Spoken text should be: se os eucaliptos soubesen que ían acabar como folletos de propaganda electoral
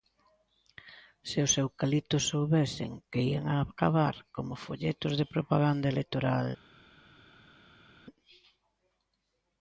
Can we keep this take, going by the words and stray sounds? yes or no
yes